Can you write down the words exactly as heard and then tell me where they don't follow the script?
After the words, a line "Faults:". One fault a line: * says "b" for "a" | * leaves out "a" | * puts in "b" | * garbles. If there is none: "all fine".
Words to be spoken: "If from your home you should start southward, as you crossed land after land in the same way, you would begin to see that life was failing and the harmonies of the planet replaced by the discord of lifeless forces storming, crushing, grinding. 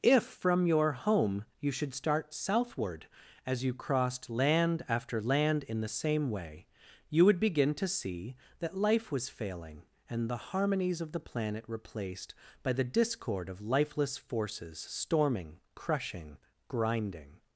"If from your home you should start southward, as you crossed land after land in the same way, you would begin to see that life was failing and the harmonies of the planet replaced by the discord of lifeless forces storming, crushing, grinding.
Faults:
all fine